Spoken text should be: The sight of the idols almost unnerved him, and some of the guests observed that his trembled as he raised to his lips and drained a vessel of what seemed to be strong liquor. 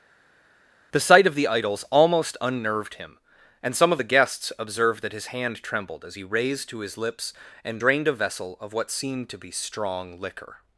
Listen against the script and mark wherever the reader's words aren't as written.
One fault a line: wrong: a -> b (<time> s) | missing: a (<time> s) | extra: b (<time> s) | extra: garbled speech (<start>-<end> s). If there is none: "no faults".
extra: hand (5.2 s)